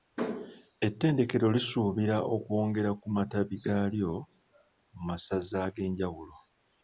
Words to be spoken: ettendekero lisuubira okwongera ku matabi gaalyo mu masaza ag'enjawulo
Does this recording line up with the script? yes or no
yes